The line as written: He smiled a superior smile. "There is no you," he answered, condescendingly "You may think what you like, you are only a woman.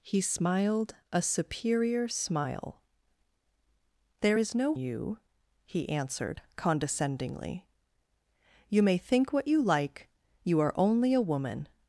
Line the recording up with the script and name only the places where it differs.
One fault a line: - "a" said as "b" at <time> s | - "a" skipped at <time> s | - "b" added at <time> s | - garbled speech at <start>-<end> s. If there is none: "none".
none